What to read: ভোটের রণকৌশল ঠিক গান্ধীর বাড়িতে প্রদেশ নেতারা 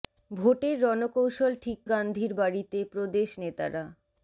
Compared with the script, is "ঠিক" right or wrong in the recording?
right